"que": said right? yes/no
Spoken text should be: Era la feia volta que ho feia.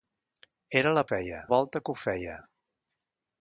yes